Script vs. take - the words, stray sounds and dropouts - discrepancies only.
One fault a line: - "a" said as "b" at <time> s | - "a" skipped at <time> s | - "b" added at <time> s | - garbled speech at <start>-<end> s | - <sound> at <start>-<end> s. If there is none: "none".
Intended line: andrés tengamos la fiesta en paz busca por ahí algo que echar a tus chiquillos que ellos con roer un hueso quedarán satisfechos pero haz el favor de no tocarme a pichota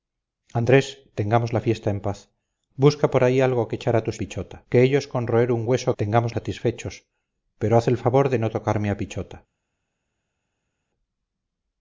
- "chiquillos" said as "pichota" at 4.2 s
- "quedarán" said as "tengamos" at 6.0 s